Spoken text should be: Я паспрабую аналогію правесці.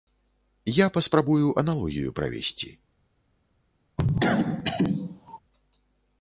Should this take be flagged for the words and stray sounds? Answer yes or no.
yes